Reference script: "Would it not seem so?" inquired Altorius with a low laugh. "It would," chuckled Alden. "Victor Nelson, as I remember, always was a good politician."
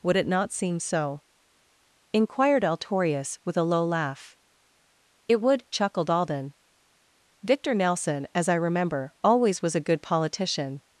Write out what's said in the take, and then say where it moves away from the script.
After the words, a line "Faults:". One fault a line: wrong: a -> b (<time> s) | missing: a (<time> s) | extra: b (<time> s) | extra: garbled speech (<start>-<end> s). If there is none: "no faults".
"Would it not seem so?" inquired Altorius with a low laugh. "It would," chuckled Alden. "Victor Nelson, as I remember, always was a good politician."
Faults:
no faults